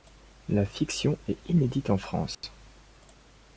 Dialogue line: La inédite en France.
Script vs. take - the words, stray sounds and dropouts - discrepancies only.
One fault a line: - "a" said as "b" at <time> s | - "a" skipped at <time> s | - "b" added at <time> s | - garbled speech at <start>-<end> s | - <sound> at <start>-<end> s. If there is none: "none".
- "fiction est" added at 0.7 s
- dropout at 2.3-2.4 s